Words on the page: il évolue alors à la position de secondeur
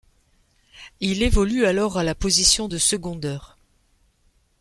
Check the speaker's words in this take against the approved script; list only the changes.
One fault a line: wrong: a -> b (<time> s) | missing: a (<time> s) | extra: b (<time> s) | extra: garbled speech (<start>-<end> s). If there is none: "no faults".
no faults